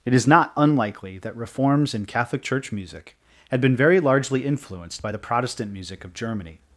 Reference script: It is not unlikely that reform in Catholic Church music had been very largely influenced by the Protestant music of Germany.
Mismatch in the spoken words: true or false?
true